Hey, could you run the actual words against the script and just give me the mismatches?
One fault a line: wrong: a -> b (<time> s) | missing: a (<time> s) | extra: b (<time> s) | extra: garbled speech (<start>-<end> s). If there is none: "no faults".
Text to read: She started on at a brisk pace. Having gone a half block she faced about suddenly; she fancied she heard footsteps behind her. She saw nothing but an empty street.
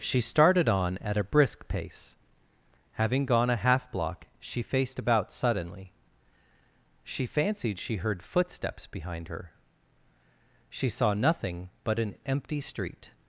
no faults